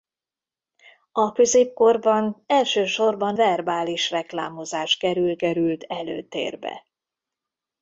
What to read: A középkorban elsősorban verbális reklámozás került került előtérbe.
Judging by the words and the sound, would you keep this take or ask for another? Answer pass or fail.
pass